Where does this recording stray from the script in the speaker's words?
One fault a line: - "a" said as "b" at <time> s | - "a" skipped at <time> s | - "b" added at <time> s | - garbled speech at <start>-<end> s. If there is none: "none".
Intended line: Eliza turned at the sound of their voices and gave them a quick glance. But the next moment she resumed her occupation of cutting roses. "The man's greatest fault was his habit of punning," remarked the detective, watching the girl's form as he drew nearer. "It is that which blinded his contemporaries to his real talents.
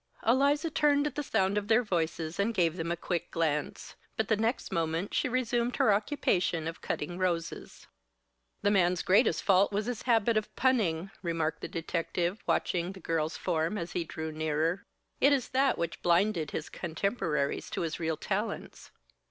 none